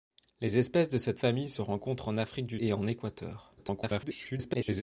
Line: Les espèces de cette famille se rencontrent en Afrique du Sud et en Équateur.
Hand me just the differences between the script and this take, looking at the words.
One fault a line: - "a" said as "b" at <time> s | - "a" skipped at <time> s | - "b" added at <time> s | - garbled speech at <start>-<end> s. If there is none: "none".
- "Sud" skipped at 2.6 s
- garbled speech at 3.6-4.8 s